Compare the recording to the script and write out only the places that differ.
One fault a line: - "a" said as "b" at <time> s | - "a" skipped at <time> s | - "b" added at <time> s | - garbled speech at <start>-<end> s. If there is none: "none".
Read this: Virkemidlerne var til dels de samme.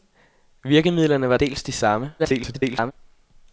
- "til" skipped at 1.4 s
- garbled speech at 2.2-2.9 s